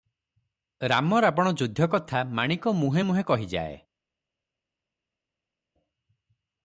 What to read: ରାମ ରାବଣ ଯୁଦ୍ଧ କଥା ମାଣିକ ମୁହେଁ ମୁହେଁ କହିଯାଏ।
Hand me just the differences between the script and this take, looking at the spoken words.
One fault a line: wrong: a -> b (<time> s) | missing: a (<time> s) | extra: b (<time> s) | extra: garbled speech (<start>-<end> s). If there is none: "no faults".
no faults